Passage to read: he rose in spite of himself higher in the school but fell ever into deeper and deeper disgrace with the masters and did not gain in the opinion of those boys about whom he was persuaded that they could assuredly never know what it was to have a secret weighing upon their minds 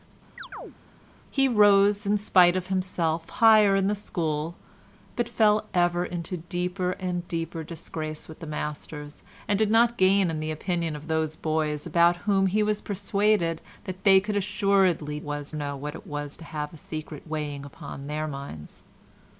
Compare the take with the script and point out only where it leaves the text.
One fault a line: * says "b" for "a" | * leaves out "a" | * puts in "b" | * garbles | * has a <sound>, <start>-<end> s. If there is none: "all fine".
* has a chirp, 0.4-0.8 s
* says "was" for "never"